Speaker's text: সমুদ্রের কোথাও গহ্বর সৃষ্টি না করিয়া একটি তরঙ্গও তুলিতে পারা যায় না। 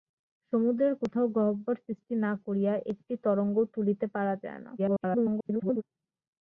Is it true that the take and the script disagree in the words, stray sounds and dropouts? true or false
true